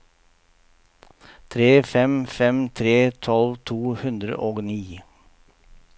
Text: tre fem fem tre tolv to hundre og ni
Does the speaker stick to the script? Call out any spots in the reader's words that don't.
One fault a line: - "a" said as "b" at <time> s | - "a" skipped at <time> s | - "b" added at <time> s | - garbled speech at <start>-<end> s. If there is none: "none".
none